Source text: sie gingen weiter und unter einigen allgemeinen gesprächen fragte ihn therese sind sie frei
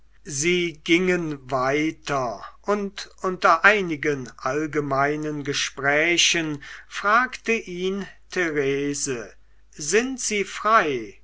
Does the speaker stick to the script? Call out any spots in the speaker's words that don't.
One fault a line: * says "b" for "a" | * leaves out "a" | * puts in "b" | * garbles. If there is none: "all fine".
all fine